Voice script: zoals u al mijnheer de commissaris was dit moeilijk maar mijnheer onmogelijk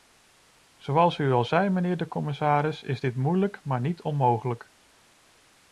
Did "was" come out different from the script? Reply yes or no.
yes